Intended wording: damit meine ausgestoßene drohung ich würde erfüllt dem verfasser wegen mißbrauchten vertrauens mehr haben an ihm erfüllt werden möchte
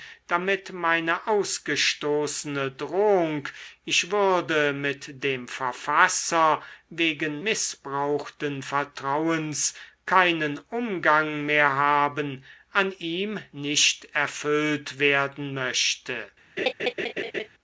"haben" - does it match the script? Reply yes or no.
yes